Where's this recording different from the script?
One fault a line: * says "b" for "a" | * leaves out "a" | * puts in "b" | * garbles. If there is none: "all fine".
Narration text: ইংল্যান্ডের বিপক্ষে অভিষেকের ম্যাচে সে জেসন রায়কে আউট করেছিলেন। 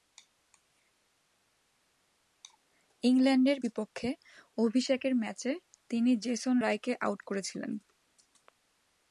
* says "তিনি" for "সে"